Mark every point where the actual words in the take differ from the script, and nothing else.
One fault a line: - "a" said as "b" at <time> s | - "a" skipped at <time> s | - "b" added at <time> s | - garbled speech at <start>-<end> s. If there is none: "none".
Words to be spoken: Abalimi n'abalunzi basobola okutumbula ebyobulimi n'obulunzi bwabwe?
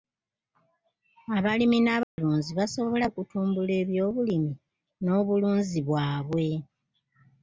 none